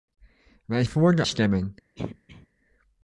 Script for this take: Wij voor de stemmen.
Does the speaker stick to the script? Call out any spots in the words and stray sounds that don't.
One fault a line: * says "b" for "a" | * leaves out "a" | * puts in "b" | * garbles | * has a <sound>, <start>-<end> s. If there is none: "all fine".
* has a throat clearing, 2.0-2.5 s